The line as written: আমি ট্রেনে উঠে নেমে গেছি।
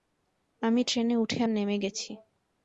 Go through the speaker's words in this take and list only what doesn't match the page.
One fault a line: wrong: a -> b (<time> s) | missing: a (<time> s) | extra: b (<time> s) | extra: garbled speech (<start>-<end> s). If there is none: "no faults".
no faults